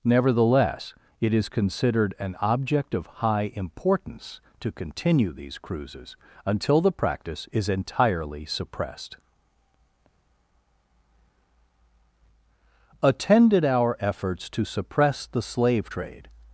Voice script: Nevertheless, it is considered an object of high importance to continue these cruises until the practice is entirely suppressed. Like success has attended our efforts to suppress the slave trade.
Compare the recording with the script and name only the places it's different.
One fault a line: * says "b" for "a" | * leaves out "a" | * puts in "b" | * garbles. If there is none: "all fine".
* leaves out "Like success has"